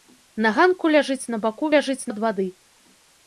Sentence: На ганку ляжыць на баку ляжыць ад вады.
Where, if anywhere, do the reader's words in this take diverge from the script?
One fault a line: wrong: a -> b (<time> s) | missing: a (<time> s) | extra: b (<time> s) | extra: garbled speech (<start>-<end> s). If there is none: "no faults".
no faults